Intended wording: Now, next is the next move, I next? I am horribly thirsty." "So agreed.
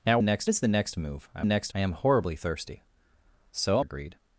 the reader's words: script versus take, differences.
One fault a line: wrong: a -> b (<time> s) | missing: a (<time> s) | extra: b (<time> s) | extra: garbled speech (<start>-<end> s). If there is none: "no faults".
no faults